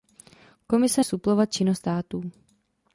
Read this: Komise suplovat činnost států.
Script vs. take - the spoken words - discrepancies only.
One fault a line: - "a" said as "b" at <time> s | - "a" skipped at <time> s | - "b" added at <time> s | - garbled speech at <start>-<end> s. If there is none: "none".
none